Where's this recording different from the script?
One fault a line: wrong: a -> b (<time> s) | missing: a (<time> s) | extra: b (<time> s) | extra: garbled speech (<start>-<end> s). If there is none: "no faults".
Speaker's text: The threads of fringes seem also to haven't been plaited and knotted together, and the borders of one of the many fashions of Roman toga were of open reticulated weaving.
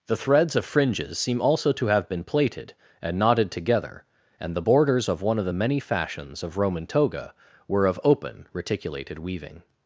wrong: haven't -> have (1.9 s)